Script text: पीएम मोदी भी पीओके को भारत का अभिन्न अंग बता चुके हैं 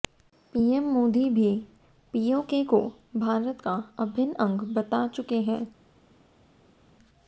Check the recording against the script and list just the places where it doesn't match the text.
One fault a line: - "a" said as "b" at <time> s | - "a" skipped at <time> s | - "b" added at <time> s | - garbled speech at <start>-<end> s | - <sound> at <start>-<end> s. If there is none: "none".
none